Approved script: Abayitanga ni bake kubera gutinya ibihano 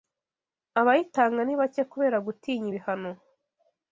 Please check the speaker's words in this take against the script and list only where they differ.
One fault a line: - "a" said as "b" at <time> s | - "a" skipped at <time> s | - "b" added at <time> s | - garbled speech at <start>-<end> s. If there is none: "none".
none